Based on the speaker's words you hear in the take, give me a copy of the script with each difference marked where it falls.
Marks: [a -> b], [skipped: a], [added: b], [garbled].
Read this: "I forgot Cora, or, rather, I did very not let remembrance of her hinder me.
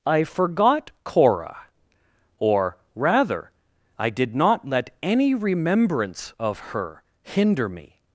"I forgot Cora, or, rather, I did [skipped: very] not let [added: any] remembrance of her hinder me.